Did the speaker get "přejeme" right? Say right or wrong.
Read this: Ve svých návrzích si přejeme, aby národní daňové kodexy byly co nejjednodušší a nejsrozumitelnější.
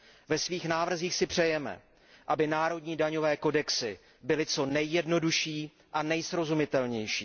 right